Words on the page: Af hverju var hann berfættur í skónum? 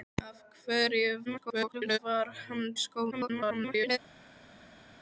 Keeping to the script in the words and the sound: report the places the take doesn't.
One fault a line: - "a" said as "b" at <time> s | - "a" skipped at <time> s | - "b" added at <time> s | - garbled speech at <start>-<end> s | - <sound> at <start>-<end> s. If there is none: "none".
- garbled speech at 1.3-2.0 s
- "berfættur" skipped at 2.7 s
- garbled speech at 3.1-4.0 s